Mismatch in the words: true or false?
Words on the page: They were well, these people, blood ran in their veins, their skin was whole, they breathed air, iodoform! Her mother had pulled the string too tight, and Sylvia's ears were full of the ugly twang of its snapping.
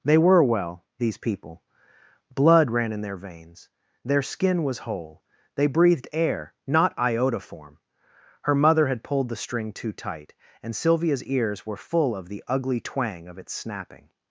true